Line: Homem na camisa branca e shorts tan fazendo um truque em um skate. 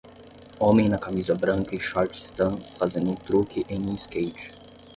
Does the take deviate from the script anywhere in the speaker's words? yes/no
no